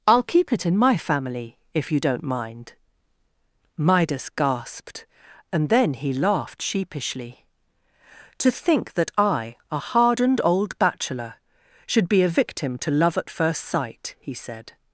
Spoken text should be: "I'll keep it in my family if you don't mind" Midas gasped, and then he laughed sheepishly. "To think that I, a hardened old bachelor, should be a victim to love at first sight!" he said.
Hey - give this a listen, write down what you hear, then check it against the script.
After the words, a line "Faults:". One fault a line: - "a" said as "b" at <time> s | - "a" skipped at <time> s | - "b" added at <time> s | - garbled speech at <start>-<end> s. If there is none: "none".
"I'll keep it in my family if you don't mind" Midas gasped, and then he laughed sheepishly. "To think that I, a hardened old bachelor, should be a victim to love at first sight!" he said.
Faults:
none